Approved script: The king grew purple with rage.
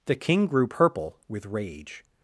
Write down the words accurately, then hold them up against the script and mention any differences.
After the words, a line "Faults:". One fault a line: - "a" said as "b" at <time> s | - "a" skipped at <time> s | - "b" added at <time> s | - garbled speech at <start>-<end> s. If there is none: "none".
The king grew purple with rage.
Faults:
none